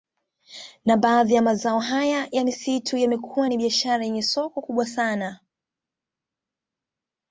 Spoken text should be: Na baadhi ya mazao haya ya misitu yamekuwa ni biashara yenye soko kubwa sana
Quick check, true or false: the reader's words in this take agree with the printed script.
true